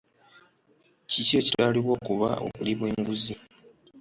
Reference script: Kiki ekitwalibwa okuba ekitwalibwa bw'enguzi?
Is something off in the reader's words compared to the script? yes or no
yes